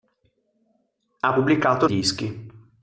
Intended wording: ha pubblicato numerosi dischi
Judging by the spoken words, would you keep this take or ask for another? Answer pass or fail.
fail